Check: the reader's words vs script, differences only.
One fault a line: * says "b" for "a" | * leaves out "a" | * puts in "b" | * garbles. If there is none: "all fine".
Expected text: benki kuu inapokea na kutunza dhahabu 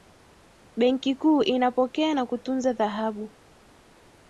all fine